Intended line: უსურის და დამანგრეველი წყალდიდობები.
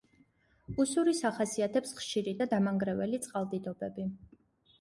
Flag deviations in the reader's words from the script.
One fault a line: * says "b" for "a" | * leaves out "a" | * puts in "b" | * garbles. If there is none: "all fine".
* puts in "ახასიათებს ხშირი"